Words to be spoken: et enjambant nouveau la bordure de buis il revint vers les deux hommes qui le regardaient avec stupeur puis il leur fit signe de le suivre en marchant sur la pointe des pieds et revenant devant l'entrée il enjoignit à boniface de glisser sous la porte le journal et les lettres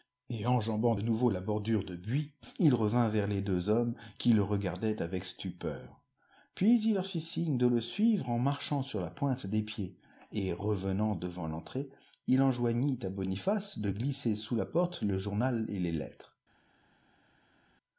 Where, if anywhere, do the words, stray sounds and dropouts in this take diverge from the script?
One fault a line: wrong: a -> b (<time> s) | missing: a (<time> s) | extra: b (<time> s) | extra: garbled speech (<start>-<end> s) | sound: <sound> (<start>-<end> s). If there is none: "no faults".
no faults